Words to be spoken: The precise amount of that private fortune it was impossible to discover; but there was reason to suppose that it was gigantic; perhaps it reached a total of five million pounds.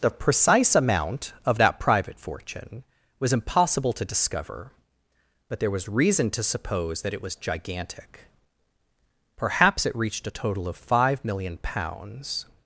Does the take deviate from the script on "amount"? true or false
false